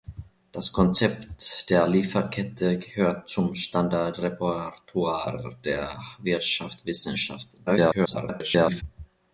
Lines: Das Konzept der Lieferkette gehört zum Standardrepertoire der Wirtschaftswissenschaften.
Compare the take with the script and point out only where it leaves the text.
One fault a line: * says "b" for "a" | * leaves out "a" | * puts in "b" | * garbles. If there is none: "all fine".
* garbles